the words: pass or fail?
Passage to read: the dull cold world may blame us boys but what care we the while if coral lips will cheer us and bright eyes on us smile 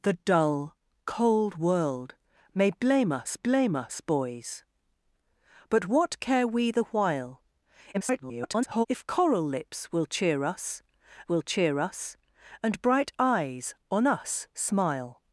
fail